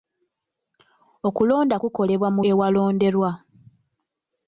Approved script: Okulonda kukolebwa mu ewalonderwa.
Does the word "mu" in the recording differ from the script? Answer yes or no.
no